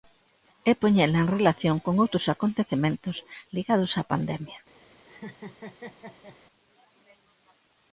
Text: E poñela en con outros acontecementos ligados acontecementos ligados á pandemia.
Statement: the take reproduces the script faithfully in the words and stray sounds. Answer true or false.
false